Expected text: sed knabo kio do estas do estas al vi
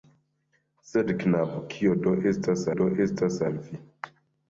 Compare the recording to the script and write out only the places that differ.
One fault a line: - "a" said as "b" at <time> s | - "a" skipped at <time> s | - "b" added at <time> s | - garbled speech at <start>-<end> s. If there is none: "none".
none